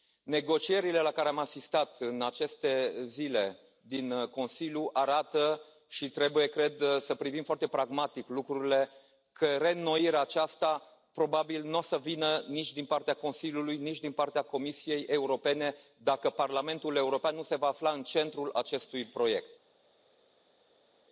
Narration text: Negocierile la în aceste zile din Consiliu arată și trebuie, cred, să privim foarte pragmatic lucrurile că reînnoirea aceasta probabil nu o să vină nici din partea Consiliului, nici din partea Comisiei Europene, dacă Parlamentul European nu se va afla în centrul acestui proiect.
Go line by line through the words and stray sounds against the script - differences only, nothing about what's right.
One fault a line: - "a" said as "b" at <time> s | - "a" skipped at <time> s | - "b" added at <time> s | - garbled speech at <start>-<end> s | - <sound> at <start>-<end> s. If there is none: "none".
- "care am asistat" added at 1.1 s